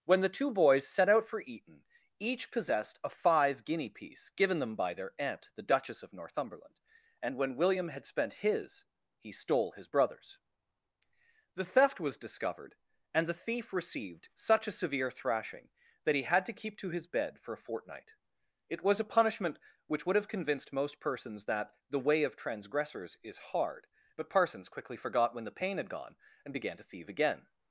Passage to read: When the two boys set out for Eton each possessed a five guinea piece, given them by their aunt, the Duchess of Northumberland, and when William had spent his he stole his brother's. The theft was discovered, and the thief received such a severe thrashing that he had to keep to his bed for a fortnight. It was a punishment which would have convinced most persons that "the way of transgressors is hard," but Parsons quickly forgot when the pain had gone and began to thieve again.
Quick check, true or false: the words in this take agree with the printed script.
true